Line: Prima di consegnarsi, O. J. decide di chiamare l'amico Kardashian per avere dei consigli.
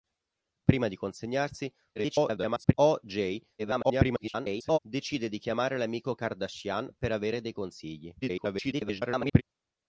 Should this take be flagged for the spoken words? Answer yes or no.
yes